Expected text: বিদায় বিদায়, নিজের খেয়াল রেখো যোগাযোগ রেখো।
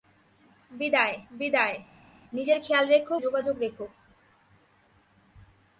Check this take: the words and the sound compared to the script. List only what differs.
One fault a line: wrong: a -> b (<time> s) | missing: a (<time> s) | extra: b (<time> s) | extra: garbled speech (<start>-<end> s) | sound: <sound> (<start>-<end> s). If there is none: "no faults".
no faults